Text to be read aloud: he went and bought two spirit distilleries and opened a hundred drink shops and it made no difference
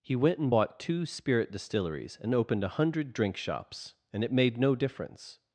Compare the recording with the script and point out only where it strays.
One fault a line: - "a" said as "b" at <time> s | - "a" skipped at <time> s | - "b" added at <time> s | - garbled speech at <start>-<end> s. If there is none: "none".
none